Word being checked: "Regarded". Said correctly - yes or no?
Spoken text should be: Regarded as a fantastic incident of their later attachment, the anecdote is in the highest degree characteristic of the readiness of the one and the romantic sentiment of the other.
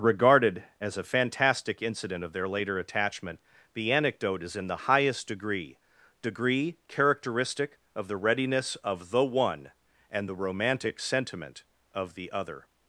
yes